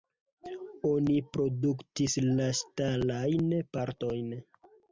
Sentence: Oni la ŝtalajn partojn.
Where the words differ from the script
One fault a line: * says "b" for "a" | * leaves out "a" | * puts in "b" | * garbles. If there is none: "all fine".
* puts in "produktis"